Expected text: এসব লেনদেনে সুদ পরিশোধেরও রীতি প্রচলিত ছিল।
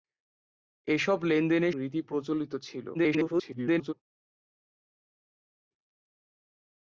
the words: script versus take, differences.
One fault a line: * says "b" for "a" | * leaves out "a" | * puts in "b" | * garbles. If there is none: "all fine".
* leaves out "সুদ পরিশোধেরও"
* garbles